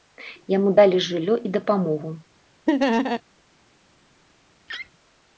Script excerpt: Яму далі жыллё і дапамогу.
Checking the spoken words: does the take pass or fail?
pass